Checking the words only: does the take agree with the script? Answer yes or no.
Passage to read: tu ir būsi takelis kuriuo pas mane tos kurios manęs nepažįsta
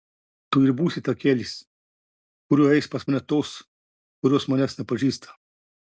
no